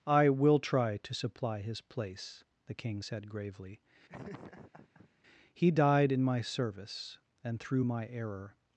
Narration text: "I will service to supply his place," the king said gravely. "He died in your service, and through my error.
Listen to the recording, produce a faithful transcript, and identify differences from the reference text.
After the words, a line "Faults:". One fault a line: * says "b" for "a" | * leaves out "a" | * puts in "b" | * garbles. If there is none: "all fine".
"I will try to supply his place," the king said gravely. "He died in my service, and through my error.
Faults:
* says "try" for "service"
* says "my" for "your"